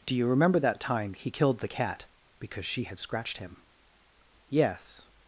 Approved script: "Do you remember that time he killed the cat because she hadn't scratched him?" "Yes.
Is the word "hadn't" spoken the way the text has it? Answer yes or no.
no